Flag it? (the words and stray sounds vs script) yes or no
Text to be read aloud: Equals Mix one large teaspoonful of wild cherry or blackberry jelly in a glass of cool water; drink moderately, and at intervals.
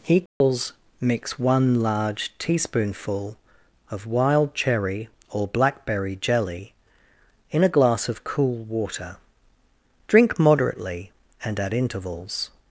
yes